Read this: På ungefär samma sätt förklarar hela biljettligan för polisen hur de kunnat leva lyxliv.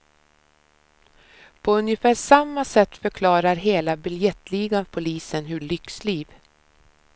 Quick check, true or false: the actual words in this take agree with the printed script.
false